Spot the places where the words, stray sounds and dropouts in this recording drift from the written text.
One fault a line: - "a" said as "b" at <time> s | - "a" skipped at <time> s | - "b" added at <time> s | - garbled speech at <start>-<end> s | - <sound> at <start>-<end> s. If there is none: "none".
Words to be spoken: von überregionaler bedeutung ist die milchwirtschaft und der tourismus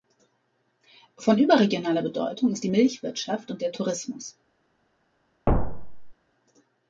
- thud at 5.5-6.1 s